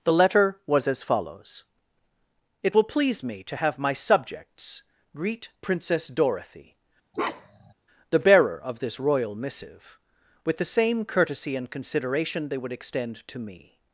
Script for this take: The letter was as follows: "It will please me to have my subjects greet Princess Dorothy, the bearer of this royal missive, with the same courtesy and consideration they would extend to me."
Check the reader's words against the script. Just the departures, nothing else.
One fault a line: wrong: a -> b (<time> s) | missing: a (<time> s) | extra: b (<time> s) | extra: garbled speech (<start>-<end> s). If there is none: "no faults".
no faults